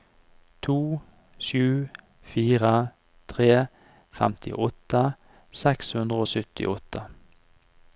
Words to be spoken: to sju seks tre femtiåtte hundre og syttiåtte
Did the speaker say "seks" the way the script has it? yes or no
no